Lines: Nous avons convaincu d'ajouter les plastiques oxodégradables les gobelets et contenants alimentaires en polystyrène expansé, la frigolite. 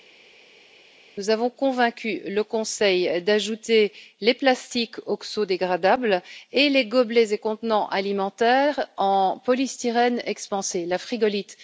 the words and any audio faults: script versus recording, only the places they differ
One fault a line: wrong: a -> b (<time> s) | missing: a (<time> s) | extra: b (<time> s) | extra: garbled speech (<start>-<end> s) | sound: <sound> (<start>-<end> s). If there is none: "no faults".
extra: le Conseil (2.3 s)
extra: et (6.5 s)